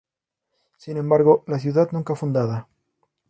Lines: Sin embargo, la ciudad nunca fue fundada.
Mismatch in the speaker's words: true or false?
true